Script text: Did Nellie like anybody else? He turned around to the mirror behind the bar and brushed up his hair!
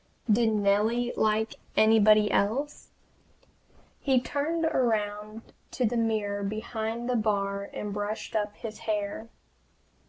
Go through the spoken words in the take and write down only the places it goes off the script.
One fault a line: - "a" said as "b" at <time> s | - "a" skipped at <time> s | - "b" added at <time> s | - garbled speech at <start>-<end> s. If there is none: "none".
none